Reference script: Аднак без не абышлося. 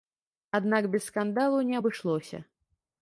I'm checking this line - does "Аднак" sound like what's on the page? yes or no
yes